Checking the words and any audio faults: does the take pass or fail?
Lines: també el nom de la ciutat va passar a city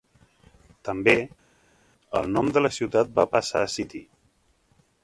pass